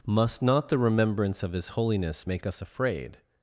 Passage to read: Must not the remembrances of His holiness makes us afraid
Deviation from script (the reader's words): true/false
true